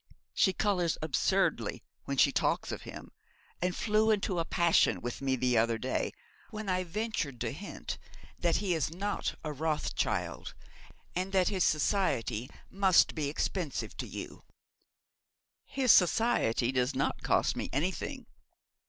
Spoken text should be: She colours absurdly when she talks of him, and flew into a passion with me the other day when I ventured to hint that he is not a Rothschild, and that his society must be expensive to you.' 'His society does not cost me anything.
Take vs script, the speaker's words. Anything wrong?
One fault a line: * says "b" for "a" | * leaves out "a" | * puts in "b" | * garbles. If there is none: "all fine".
all fine